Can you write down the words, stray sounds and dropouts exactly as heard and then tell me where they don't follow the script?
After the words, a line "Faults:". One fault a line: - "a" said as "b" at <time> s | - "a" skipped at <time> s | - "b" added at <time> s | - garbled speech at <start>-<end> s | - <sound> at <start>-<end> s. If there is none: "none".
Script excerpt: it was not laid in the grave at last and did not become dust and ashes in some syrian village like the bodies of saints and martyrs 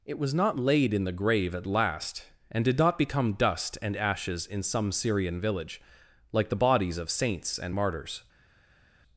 it was not laid in the grave at last and did not become dust and ashes in some syrian village like the bodies of saints and martyrs
Faults:
none